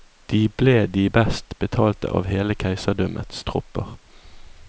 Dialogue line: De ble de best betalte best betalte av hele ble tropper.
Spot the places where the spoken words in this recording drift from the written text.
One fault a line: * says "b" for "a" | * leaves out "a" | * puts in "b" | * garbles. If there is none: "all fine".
* leaves out "best betalte"
* says "keiserdømmets" for "ble"